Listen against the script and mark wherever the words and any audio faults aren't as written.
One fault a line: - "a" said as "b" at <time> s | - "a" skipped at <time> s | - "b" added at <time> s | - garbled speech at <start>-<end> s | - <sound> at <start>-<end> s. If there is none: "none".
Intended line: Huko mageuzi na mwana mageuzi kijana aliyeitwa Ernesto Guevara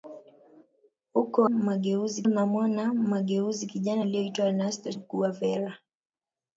none